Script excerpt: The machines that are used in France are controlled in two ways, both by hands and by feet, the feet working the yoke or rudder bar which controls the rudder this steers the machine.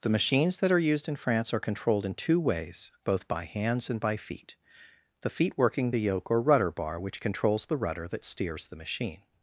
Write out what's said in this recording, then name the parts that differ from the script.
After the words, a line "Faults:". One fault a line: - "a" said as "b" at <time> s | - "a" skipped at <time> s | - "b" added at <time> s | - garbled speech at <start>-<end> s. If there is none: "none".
The machines that are used in France are controlled in two ways, both by hands and by feet, the feet working the yoke or rudder bar which controls the rudder that steers the machine.
Faults:
- "this" said as "that" at 8.1 s